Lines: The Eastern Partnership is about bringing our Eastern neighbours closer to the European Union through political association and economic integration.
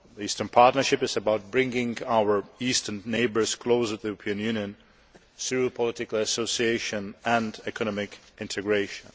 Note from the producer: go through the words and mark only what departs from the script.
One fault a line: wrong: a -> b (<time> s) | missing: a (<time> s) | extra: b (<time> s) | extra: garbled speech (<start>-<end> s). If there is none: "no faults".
no faults